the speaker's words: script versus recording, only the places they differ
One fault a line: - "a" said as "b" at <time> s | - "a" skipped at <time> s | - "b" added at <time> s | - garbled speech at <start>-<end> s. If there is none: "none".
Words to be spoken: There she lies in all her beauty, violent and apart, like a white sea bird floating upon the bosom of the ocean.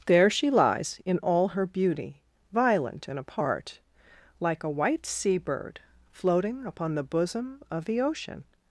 none